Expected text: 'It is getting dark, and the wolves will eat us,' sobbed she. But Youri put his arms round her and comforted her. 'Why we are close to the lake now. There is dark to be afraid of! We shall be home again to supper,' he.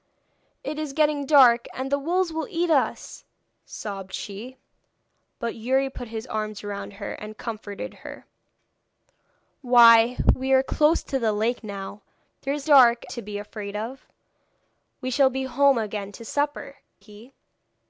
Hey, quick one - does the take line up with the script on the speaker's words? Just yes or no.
yes